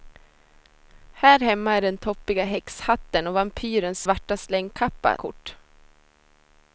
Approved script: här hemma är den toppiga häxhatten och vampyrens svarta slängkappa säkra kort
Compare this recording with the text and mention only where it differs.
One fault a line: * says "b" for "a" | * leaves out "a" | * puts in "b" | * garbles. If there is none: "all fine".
* leaves out "säkra"